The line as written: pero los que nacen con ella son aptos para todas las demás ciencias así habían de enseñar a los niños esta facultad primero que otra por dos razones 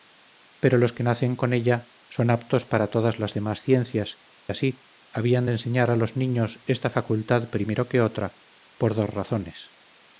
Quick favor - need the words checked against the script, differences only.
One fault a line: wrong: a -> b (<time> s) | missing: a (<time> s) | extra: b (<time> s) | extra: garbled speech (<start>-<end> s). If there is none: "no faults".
no faults